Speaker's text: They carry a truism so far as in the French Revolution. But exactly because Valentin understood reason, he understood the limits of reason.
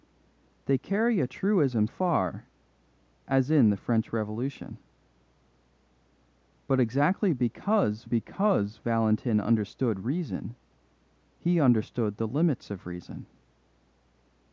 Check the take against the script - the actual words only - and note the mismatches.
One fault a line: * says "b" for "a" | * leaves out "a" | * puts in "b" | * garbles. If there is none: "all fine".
* leaves out "so"
* puts in "because"